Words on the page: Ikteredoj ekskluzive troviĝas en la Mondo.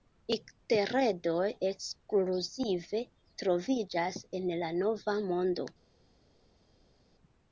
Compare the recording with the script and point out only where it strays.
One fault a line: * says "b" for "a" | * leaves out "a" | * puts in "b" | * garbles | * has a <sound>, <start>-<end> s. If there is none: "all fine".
* puts in "Nova"